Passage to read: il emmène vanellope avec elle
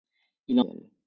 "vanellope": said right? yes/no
no